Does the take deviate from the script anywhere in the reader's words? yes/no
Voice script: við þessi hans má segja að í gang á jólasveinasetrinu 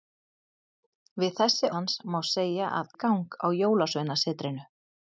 no